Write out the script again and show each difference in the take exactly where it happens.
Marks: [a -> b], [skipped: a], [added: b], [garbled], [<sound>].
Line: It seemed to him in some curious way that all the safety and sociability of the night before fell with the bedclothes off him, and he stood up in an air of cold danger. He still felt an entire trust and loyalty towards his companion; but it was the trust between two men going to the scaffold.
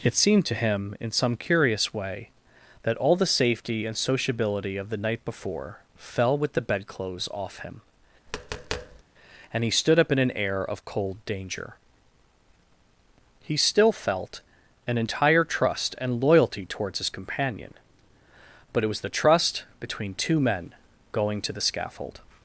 It seemed to him in some curious way that all the safety and sociability of the night before fell with the bedclothes off him, [tap] and he stood up in an air of cold danger. He still felt an entire trust and loyalty towards his companion; but it was the trust between two men going to the scaffold.